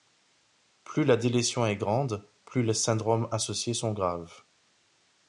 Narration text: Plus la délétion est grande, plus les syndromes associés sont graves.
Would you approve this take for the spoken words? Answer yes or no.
yes